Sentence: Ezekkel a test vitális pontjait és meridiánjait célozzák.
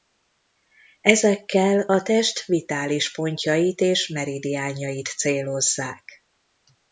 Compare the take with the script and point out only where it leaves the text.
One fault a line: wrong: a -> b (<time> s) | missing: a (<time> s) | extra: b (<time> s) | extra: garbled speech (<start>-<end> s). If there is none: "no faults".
no faults